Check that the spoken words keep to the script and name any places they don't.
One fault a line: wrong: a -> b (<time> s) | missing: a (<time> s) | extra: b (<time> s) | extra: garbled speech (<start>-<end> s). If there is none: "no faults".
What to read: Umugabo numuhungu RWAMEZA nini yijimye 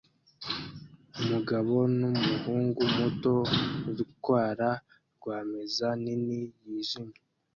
extra: muto utwara (3.0 s)